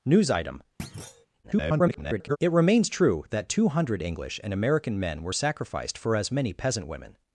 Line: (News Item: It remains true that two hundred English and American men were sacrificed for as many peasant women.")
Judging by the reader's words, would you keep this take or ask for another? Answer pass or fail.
fail